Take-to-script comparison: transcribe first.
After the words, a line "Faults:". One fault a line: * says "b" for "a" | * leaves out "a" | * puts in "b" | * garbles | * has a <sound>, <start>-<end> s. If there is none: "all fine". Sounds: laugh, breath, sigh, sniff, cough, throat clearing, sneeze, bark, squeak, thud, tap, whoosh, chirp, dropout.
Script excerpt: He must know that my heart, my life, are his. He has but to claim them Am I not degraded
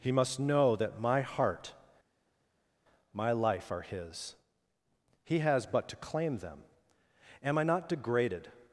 He must know that my heart, my life, are his. He has but to claim them Am I not degraded
Faults:
all fine